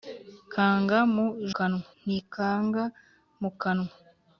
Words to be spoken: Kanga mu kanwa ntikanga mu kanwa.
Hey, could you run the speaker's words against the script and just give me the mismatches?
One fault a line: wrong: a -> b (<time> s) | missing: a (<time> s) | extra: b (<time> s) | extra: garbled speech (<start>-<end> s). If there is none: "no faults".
no faults